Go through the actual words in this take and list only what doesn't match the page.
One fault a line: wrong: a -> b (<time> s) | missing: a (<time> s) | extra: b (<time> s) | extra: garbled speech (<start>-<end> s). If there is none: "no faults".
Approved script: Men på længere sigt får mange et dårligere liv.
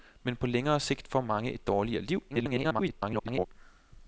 extra: garbled speech (2.3-3.5 s)